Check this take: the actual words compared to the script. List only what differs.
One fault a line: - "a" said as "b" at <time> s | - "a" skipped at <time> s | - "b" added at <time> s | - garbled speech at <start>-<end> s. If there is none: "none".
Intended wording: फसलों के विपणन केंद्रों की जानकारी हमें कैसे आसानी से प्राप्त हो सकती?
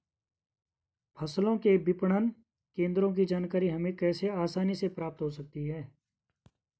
none